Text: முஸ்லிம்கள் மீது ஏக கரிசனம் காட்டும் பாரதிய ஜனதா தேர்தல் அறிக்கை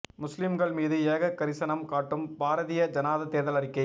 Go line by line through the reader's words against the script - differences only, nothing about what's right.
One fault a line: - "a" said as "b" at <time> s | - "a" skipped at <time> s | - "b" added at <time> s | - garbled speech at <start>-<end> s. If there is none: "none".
none